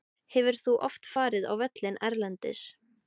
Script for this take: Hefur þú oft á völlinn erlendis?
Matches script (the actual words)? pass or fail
fail